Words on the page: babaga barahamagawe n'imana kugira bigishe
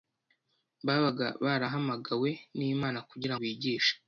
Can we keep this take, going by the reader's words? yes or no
yes